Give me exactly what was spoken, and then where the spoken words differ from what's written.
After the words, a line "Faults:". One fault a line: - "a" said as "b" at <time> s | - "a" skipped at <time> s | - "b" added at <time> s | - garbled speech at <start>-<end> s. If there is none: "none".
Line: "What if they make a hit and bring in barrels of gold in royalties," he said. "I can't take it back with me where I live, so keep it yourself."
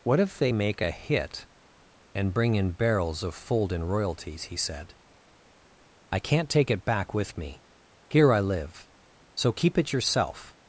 "What if they make a hit and bring in barrels of fold in royalties," he said. "I can't take it back with me here I live, so keep it yourself."
Faults:
- "gold" said as "fold" at 3.3 s
- "where" said as "here" at 8.1 s